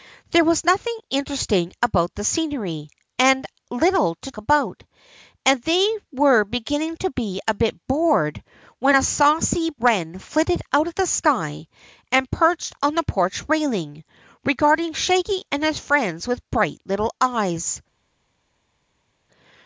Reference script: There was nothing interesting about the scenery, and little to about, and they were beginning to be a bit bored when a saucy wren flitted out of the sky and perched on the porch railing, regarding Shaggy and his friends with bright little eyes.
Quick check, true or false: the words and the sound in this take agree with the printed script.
true